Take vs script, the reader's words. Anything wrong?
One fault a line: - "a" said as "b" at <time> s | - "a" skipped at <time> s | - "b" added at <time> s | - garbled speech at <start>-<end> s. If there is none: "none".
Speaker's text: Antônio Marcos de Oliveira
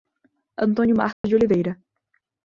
none